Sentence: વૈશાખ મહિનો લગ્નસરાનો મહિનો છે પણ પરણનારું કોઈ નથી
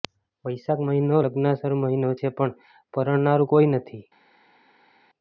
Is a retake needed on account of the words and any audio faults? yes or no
no